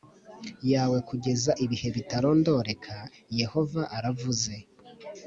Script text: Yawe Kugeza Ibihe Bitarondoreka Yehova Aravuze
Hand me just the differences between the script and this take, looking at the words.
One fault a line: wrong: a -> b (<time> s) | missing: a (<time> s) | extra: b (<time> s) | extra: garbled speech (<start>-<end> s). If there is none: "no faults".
no faults